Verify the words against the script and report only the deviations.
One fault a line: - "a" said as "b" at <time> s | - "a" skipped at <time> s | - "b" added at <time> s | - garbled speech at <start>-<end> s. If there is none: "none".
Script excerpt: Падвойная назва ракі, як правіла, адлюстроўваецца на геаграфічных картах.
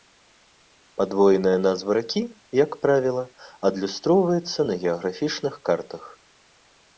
none